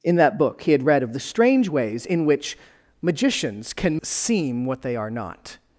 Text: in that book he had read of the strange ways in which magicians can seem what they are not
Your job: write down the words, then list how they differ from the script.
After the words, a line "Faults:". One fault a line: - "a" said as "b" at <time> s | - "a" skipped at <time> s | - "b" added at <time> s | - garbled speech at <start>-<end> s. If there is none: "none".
in that book he had read of the strange ways in which magicians can seem what they are not
Faults:
none